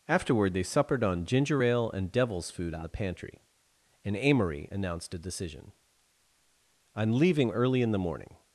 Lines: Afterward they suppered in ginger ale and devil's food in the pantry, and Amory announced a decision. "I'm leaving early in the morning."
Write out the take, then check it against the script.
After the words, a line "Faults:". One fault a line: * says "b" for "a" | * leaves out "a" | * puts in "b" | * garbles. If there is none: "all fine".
Afterward they suppered on ginger ale and devil's food in the pantry, and Amory announced a decision. "I'm leaving early in the morning."
Faults:
* says "on" for "in"